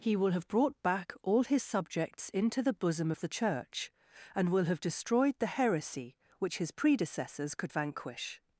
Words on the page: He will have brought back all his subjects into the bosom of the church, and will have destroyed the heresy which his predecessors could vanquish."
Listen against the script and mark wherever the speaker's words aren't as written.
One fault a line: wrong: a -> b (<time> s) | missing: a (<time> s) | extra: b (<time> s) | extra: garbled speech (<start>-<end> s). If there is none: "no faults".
no faults